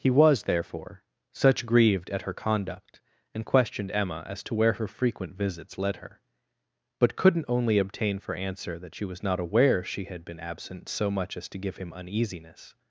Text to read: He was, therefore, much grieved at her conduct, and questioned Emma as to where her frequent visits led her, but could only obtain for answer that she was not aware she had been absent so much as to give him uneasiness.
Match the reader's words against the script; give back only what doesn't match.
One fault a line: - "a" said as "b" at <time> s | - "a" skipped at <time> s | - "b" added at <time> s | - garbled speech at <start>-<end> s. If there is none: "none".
- "much" said as "such" at 1.3 s
- "could" said as "couldn't" at 7.2 s